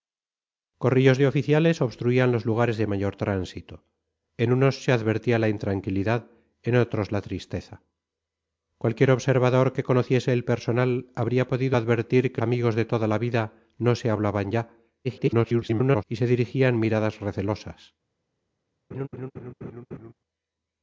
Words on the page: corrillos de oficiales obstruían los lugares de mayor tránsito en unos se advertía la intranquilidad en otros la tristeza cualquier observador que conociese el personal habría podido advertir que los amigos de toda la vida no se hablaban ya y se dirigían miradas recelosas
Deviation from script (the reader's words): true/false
true